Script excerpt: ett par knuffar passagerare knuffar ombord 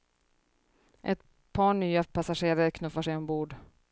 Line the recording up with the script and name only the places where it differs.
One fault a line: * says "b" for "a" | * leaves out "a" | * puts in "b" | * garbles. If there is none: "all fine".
* says "nya" for "knuffar"
* puts in "sig"